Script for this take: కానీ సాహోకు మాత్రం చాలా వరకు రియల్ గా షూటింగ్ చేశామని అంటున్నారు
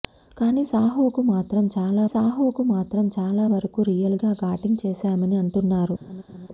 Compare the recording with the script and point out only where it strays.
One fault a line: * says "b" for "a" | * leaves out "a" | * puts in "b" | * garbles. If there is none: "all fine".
* puts in "సాహోకు మాత్రం చాలా"